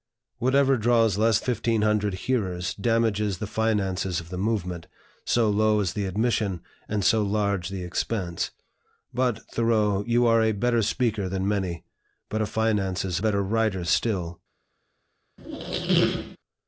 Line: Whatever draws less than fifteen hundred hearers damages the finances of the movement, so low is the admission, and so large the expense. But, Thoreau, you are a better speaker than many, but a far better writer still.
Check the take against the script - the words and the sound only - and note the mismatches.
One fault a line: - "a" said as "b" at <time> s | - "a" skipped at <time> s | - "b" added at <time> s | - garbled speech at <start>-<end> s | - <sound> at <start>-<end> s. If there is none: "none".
- "than" skipped at 1.4 s
- "far" said as "finances" at 12.5 s
- squeak at 15.4-16.4 s